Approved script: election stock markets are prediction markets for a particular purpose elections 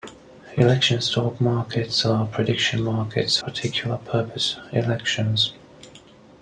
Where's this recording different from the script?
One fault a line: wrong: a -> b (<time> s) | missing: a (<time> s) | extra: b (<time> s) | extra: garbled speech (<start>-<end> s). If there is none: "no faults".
missing: for a (3.4 s)